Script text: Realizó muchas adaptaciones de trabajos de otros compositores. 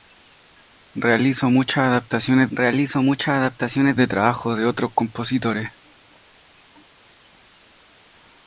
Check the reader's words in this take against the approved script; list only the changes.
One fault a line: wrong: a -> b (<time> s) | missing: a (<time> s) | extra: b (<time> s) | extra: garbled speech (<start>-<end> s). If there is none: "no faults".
extra: realizó muchas adaptaciones (2.5 s)